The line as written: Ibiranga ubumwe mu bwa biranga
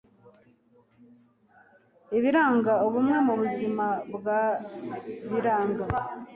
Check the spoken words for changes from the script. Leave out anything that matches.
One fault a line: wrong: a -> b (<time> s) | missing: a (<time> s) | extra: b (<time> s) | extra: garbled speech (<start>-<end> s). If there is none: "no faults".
extra: buzima (3.4 s)